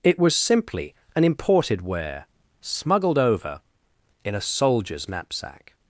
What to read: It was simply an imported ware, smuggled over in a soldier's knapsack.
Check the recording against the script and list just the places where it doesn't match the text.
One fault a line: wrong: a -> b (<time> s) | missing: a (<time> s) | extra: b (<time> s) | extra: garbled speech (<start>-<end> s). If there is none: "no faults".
no faults